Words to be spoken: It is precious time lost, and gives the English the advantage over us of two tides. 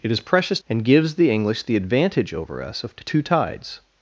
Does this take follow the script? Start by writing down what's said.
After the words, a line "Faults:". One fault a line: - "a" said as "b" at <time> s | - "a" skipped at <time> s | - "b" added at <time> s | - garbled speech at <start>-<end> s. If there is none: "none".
It is precious and gives the English the advantage over us of two tides.
Faults:
- "time lost" skipped at 0.6 s